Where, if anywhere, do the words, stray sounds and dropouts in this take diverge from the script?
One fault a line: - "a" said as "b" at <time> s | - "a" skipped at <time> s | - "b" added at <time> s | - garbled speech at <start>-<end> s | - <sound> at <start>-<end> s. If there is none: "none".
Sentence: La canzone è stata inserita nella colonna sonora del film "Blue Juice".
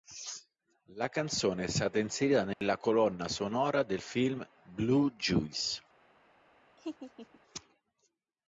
- dropout at 2.5-2.6 s
- laugh at 6.8-7.4 s